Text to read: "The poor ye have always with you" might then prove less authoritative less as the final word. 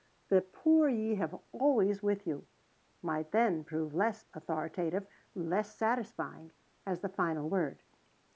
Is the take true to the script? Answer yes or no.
no